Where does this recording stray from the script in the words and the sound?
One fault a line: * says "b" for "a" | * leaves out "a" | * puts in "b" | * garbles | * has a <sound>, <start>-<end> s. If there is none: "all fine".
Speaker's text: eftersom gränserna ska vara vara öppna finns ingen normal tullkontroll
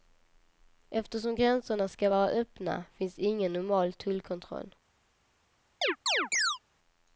* leaves out "vara"
* has a chirp, 5.8-6.6 s